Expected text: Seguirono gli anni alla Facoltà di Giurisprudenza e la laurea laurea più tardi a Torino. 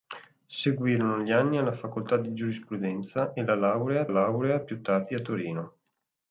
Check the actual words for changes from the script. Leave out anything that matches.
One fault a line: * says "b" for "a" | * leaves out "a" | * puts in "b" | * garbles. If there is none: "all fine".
all fine